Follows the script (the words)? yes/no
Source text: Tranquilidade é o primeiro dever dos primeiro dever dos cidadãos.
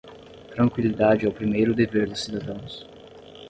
no